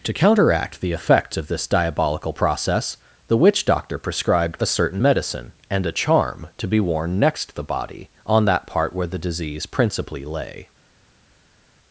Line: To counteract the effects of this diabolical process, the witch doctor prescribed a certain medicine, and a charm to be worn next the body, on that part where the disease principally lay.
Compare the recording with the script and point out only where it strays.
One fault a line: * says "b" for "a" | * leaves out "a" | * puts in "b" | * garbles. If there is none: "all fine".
all fine